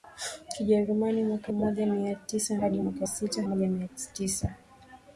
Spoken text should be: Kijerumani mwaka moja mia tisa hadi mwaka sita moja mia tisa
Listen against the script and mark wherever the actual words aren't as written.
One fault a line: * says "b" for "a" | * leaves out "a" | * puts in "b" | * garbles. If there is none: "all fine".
all fine